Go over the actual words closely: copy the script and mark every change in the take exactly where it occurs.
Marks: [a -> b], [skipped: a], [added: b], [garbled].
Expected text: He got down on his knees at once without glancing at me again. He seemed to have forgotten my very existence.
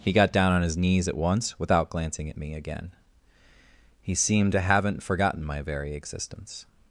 He got down on his knees at once without glancing at me again. He seemed to [have -> haven't] forgotten my very existence.